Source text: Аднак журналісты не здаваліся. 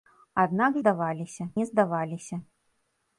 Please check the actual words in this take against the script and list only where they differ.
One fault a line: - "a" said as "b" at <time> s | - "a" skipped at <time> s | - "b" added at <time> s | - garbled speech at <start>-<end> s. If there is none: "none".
- "журналісты" said as "здаваліся" at 0.8 s